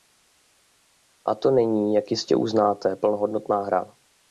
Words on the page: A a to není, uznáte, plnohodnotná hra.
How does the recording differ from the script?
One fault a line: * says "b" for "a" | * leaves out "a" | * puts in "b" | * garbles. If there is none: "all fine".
* leaves out "a"
* puts in "jak jistě"